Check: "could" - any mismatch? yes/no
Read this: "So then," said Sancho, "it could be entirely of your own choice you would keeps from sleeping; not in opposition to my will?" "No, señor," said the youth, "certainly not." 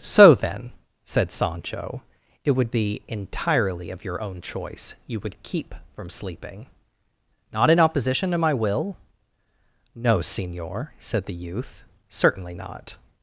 yes